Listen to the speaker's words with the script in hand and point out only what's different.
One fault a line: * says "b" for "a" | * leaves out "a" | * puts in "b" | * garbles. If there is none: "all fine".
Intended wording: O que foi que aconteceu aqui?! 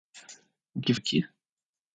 * leaves out "foi que aconteceu"